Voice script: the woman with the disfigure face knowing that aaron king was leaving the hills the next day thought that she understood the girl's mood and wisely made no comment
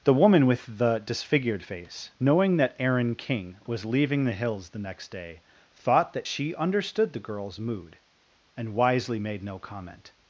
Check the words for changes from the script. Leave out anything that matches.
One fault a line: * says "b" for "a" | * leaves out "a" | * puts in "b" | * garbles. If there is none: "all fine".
* says "disfigured" for "disfigure"